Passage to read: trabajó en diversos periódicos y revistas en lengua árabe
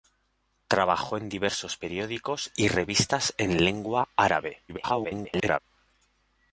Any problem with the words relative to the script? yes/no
yes